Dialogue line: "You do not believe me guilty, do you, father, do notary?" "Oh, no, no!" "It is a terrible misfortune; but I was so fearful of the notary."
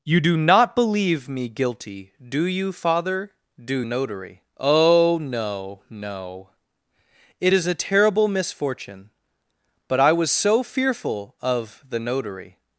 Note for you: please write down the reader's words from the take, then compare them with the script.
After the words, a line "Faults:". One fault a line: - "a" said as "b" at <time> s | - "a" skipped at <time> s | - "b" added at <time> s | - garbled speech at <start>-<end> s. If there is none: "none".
"You do not believe me guilty, do you, father, do notary?" "Oh, no, no!" "It is a terrible misfortune; but I was so fearful of the notary."
Faults:
none